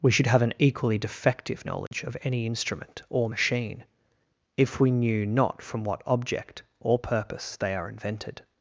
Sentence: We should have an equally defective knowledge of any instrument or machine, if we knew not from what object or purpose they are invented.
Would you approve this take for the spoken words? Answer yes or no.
yes